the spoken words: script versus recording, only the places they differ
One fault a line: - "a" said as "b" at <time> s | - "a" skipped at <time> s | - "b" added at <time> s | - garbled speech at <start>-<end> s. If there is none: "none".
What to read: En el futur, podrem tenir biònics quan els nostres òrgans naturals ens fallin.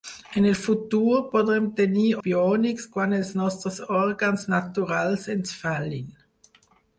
none